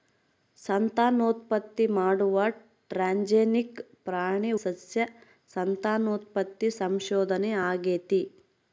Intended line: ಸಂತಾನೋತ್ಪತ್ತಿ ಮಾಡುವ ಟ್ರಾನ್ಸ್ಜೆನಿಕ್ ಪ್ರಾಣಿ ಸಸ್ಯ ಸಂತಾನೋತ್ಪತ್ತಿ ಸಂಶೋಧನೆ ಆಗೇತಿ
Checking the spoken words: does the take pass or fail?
pass